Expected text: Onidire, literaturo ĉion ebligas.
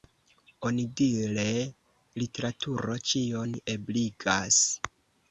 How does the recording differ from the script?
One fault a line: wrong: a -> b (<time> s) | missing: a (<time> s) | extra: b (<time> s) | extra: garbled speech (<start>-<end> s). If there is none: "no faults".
no faults